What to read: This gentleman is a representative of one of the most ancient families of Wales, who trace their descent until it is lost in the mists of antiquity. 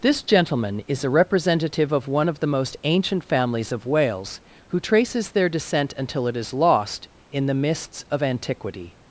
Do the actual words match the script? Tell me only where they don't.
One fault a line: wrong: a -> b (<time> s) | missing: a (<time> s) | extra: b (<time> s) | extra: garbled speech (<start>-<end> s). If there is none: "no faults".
wrong: trace -> traces (4.8 s)